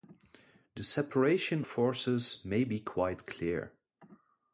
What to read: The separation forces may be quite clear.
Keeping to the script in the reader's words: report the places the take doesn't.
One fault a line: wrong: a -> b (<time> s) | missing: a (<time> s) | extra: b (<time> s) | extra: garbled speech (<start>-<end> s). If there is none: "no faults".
no faults